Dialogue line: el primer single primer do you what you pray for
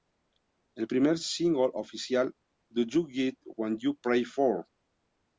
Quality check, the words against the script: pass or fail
fail